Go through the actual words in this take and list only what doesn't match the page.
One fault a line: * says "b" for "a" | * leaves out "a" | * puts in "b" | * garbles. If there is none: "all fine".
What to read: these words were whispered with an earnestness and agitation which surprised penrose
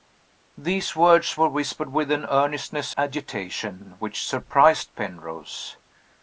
* leaves out "and"